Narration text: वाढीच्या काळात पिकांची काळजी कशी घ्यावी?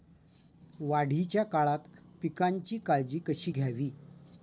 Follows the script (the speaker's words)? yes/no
yes